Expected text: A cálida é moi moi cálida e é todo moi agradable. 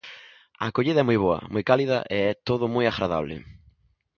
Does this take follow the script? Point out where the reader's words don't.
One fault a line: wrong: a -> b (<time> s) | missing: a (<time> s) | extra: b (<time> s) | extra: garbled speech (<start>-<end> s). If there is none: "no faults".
wrong: cálida -> acollida (0.7 s)
extra: boa (1.2 s)